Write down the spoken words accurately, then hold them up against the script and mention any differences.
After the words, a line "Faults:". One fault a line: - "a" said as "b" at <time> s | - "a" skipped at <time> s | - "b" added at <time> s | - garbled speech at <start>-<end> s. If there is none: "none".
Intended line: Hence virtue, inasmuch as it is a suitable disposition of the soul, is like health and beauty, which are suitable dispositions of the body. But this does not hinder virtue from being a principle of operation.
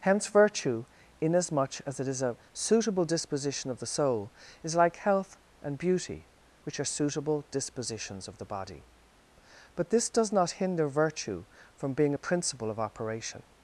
Hence virtue, inasmuch as it is a suitable disposition of the soul, is like health and beauty, which are suitable dispositions of the body. But this does not hinder virtue from being a principle of operation.
Faults:
none